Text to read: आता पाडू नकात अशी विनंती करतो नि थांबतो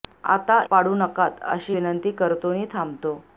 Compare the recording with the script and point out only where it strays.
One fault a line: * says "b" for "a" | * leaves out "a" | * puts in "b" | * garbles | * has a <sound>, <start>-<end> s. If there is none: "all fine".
all fine